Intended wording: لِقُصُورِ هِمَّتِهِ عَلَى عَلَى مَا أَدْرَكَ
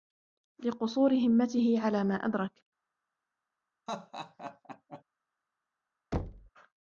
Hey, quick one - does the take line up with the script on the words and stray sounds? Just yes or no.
no